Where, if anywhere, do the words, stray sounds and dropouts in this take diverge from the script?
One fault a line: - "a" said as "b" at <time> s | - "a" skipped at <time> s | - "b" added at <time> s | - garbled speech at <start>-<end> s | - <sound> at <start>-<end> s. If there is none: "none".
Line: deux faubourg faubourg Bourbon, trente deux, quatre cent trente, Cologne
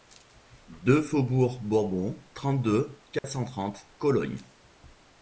- "faubourg" skipped at 1.6 s
- dropout at 3.2-3.2 s